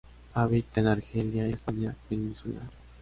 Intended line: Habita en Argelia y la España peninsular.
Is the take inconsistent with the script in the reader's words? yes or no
no